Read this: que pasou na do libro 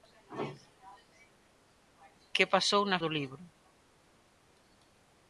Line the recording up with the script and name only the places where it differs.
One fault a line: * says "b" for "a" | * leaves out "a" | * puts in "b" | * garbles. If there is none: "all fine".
all fine